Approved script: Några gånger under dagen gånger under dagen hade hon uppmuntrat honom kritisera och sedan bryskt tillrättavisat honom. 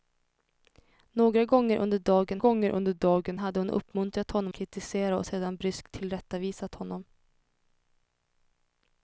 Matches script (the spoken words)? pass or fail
pass